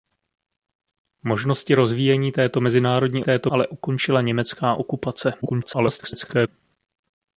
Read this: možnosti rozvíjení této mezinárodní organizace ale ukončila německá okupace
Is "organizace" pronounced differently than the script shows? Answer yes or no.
yes